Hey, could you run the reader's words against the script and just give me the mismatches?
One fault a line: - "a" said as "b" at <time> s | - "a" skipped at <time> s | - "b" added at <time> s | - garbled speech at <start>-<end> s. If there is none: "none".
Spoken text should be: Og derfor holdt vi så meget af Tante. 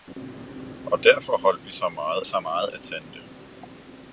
- "så meget" added at 2.2 s